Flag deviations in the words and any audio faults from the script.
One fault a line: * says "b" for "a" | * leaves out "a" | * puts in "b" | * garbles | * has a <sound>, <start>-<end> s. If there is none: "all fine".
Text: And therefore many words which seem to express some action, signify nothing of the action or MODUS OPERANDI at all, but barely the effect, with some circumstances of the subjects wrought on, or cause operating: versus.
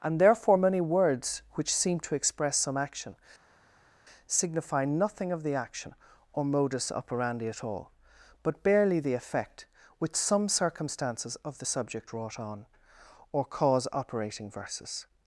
* says "subject" for "subjects"